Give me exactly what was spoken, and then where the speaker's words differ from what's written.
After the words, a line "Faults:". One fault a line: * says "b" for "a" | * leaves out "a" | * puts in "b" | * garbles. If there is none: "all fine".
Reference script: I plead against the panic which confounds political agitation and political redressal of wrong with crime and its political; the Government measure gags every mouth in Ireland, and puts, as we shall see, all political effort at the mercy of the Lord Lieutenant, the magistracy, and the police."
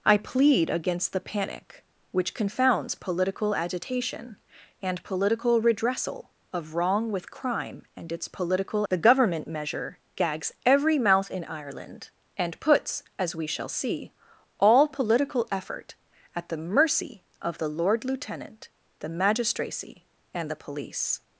I plead against the panic which confounds political agitation and political redressal of wrong with crime and its political; the Government measure gags every mouth in Ireland, and puts, as we shall see, all political effort at the mercy of the Lord Lieutenant, the magistracy, and the police."
Faults:
all fine